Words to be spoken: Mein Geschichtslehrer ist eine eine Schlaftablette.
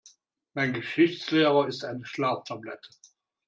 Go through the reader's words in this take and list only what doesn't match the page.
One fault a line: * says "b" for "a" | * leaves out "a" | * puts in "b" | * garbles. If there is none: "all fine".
* leaves out "eine"